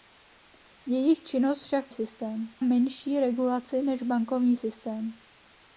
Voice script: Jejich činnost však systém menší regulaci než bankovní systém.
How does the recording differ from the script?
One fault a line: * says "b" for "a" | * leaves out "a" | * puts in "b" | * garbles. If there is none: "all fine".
all fine